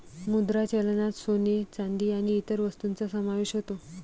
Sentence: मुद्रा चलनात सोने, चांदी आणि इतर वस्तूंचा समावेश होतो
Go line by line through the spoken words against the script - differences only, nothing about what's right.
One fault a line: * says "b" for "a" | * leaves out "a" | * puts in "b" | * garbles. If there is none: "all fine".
all fine